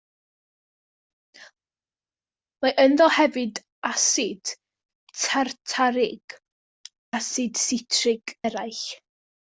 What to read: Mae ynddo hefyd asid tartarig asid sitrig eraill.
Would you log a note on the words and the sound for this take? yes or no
no